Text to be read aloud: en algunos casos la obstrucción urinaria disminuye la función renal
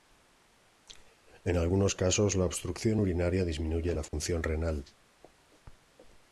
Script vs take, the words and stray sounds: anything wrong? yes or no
yes